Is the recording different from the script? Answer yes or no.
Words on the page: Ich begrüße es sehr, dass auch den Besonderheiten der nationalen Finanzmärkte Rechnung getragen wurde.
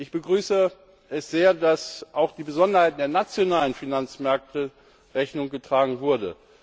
no